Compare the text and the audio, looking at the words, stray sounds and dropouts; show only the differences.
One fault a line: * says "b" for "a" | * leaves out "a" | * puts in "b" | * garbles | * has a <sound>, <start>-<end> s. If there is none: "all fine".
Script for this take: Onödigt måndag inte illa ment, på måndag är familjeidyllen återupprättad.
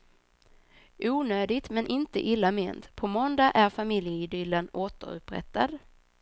* says "men" for "måndag"